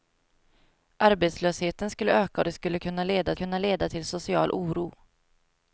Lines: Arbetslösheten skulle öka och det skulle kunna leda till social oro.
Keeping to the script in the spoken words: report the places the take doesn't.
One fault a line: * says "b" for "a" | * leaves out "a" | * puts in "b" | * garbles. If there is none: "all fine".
* puts in "kunna leda"